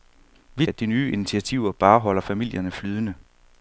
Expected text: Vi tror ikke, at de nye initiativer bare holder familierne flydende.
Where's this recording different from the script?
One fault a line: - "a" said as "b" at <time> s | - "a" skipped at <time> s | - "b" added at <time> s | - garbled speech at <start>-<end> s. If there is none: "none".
- "tror ikke" skipped at 0.7 s